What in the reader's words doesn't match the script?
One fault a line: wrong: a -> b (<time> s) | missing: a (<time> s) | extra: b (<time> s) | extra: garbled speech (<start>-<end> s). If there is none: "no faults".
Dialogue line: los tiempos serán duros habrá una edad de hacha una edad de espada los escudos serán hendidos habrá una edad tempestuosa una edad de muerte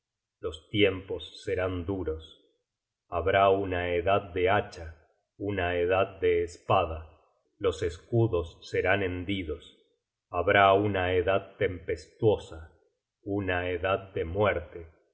no faults